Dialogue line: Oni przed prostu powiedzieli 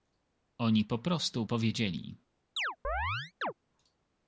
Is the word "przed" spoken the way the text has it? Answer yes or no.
no